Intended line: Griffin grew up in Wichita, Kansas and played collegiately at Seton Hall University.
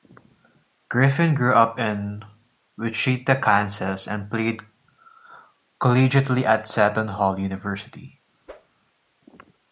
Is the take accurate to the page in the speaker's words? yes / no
yes